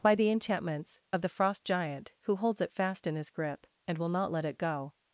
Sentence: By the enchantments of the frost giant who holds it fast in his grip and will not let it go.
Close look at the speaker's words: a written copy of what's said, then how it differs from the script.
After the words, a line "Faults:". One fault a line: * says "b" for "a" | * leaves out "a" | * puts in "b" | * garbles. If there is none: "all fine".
By the enchantments of the frost giant who holds it fast in his grip and will not let it go.
Faults:
all fine